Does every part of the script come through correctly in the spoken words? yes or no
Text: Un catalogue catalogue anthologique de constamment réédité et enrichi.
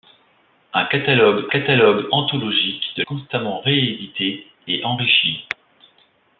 yes